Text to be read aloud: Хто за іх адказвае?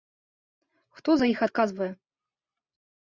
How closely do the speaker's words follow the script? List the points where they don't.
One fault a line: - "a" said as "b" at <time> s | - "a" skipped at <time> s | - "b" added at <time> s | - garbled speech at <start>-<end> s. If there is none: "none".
none